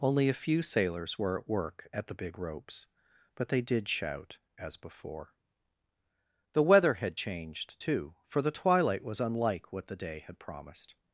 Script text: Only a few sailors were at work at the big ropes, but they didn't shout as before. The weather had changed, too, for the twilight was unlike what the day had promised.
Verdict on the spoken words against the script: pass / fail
fail